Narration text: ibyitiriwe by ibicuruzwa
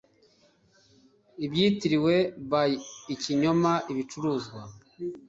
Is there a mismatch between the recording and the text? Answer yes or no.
yes